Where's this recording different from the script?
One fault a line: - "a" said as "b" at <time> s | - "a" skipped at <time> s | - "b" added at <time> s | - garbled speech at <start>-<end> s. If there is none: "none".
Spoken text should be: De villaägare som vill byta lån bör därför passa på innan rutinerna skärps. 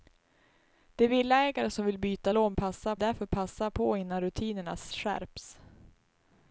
- "bör" said as "passa" at 2.5 s